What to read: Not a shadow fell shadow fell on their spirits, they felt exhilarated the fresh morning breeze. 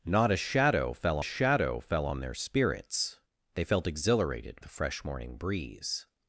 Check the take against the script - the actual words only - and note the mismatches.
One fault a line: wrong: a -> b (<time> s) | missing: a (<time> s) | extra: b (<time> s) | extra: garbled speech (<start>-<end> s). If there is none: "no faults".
no faults